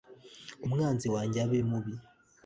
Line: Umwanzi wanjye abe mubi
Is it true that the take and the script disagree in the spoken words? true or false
false